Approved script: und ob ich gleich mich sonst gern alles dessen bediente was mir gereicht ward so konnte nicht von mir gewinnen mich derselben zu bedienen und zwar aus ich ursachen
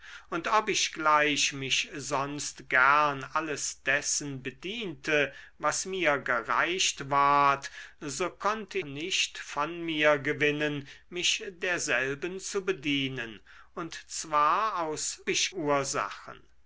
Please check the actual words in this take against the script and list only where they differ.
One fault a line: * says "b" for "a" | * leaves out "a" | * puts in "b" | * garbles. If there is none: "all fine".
all fine